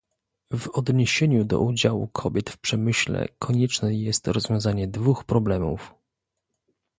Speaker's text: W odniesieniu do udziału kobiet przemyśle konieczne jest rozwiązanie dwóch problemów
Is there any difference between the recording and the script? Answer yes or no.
yes